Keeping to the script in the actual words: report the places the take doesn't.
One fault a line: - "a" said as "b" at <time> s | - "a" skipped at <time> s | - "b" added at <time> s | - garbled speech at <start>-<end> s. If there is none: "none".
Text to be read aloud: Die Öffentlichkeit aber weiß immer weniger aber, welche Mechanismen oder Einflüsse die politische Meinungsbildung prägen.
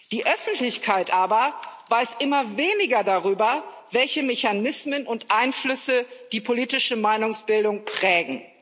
- "aber" said as "darüber" at 3.0 s
- "oder" said as "und" at 5.0 s